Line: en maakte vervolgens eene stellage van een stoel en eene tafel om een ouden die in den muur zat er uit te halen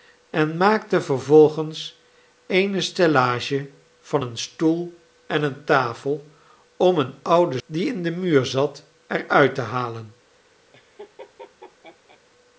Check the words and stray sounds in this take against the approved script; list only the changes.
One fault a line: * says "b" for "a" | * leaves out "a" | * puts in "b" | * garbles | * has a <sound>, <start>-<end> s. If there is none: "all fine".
* has a laugh, 10.7-12.2 s